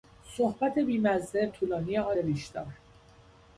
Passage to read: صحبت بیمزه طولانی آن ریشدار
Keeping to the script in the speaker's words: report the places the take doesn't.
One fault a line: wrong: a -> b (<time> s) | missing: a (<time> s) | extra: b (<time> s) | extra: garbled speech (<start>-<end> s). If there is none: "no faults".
no faults